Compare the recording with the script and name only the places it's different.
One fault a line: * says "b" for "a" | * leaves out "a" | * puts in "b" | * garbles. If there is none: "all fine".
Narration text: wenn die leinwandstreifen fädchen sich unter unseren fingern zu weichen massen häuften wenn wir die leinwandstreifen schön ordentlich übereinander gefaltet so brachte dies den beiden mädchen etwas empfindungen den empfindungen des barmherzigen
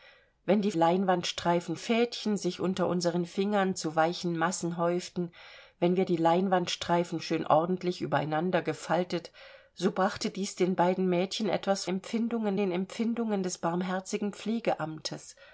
all fine